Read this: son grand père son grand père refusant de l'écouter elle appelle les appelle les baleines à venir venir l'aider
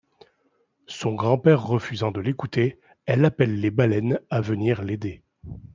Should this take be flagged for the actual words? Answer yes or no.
yes